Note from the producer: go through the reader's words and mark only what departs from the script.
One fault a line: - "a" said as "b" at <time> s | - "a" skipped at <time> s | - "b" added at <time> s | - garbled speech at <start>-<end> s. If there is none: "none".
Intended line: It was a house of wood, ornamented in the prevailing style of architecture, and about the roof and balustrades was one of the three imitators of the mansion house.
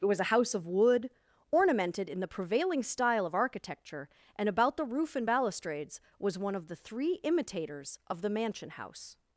none